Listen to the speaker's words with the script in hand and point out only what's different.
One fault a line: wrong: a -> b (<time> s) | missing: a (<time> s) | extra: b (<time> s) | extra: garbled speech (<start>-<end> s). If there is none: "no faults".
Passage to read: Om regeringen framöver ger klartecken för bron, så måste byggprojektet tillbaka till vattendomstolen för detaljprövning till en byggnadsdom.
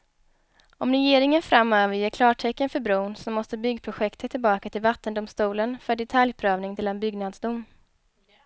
no faults